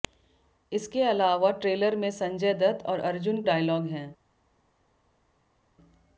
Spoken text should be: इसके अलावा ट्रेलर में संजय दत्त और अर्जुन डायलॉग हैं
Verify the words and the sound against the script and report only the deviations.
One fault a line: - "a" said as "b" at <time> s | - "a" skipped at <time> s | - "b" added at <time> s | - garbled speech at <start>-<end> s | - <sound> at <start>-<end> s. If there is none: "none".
none